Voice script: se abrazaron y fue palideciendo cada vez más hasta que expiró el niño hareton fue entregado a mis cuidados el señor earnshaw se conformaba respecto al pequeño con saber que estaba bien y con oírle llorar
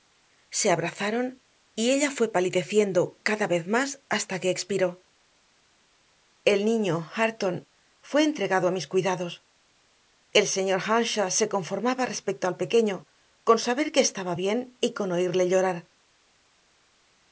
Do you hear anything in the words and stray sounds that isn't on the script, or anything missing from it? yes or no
yes